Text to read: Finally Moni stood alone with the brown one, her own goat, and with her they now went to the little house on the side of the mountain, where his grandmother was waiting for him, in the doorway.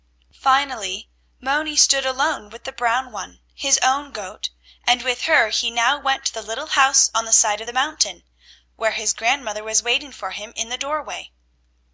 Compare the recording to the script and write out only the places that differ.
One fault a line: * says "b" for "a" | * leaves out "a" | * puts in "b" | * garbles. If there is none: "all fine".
* says "his" for "her"
* says "he" for "they"